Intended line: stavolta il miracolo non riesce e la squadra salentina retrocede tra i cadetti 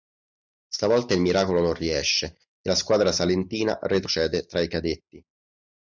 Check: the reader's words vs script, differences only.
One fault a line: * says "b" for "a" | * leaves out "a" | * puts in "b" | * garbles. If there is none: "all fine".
all fine